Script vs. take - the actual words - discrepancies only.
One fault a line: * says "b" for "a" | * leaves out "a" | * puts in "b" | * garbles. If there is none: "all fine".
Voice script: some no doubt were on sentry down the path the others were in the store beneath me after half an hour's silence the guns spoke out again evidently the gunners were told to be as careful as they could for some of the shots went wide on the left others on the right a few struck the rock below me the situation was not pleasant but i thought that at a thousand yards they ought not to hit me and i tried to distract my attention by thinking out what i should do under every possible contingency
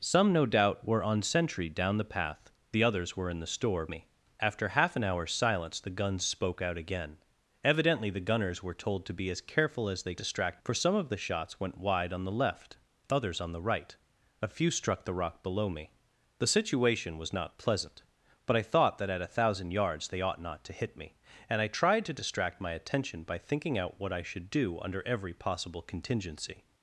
* leaves out "beneath"
* says "distract" for "could"